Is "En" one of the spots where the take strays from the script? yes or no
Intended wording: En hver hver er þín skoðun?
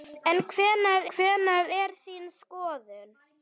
no